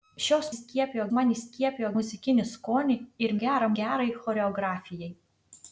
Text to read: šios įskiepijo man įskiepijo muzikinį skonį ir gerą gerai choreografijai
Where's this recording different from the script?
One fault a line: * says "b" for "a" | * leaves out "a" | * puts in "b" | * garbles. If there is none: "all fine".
all fine